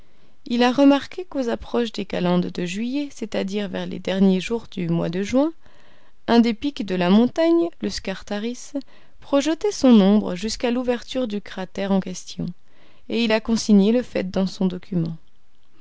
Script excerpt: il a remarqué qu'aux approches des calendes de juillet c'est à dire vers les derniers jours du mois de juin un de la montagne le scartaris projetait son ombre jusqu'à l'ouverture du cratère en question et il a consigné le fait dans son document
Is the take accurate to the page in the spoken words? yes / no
no